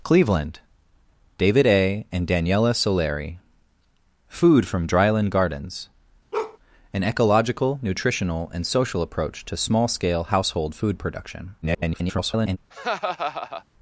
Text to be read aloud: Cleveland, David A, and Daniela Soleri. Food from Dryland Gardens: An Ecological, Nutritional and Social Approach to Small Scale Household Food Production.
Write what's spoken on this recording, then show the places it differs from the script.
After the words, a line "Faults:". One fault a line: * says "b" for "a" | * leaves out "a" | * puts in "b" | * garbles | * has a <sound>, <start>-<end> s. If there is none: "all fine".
Cleveland, David A, and Daniela Soleri. Food from Dryland Gardens: An Ecological, Nutritional and Social Approach to Small Scale Household Food Production. [garbled]
Faults:
* has a bark, 6.3-6.6 s
* garbles
* has a laugh, 12.7-13.6 s